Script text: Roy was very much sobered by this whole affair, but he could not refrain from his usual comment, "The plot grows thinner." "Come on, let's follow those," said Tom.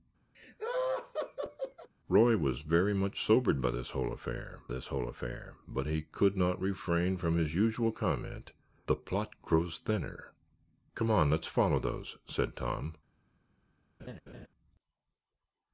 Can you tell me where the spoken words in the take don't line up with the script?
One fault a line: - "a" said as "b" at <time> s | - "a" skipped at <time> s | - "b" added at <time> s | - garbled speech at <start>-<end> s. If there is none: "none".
- "this whole affair" added at 4.7 s